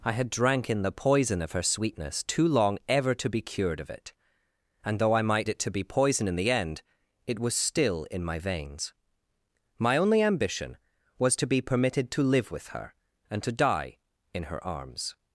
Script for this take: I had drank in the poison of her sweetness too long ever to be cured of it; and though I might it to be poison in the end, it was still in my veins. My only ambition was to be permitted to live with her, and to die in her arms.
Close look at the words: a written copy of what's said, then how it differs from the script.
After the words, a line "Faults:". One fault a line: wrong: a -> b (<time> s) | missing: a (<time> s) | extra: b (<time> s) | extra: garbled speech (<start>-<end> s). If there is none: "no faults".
I had drank in the poison of her sweetness too long ever to be cured of it; and though I might it to be poison in the end, it was still in my veins. My only ambition was to be permitted to live with her, and to die in her arms.
Faults:
no faults